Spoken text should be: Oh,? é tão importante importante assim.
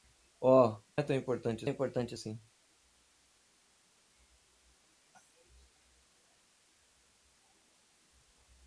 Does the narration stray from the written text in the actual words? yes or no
no